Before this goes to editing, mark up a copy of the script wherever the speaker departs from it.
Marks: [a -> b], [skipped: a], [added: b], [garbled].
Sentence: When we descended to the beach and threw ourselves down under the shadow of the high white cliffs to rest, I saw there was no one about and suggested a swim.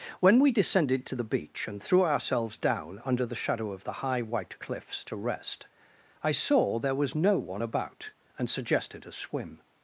When we descended to the beach and threw ourselves down under the shadow of the high white cliffs to rest, I saw there was no one about and suggested a swim.